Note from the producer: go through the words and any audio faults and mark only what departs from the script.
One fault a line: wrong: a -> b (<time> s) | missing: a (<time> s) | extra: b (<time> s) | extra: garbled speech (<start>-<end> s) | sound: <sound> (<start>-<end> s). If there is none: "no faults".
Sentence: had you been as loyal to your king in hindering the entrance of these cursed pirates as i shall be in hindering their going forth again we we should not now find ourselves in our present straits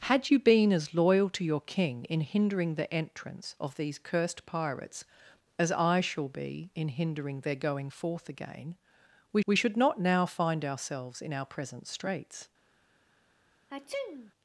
sound: sneeze (13.7-14.3 s)